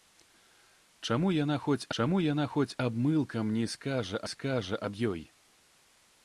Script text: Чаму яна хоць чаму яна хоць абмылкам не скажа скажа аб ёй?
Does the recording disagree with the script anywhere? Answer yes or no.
no